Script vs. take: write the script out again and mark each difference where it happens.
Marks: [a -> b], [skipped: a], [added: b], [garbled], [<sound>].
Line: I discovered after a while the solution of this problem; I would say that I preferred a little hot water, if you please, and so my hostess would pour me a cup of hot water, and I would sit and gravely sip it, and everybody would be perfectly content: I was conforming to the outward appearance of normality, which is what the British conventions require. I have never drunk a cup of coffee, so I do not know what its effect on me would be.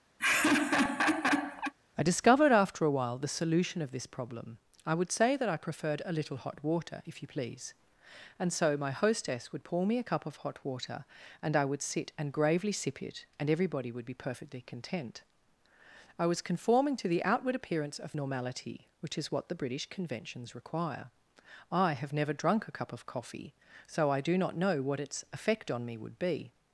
[laugh] I discovered after a while the solution of this problem; I would say that I preferred a little hot water, if you please, and so my hostess would pour me a cup of hot water, and I would sit and gravely sip it, and everybody would be perfectly content: I was conforming to the outward appearance of normality, which is what the British conventions require. I have never drunk a cup of coffee, so I do not know what its effect on me would be.